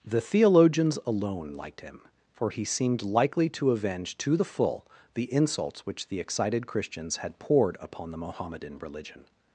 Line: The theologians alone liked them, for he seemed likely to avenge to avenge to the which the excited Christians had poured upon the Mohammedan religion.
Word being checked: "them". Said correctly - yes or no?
no